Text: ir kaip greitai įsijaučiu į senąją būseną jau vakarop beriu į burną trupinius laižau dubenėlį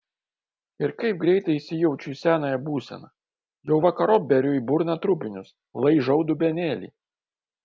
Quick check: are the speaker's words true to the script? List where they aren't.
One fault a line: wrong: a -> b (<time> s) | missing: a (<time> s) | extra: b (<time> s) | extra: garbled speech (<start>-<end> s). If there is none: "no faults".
no faults